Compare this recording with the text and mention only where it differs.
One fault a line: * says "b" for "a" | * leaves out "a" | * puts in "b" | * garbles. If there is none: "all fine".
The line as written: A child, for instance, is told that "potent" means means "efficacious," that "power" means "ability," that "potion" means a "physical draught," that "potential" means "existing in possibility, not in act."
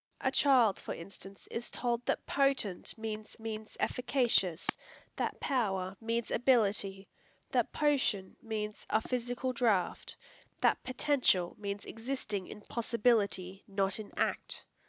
all fine